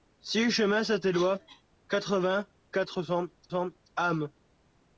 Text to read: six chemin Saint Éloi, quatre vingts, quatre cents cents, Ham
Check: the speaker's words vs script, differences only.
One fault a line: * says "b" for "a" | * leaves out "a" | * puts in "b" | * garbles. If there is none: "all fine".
all fine